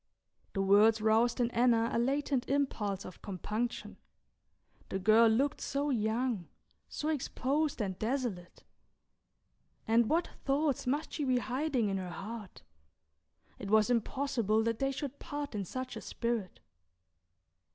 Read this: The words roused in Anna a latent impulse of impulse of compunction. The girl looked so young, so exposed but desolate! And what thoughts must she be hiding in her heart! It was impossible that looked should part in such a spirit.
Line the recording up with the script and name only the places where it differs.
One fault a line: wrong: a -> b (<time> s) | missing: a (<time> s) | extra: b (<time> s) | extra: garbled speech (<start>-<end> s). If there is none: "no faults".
missing: impulse of (3.2 s)
wrong: but -> and (7.8 s)
wrong: looked -> they (14.8 s)